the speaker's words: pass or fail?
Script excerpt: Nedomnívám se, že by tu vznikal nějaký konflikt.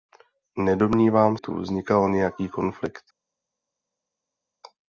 fail